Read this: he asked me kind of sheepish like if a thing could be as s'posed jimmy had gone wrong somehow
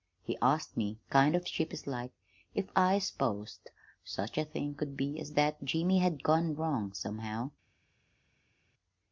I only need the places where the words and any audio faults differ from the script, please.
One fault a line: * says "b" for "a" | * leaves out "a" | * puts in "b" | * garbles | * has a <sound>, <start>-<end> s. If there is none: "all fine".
* puts in "i s'posed such"
* says "that" for "s'posed"